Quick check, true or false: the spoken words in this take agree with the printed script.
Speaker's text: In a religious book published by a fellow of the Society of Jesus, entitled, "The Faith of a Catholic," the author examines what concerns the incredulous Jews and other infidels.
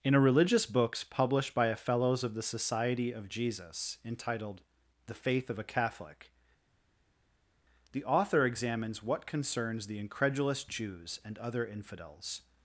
false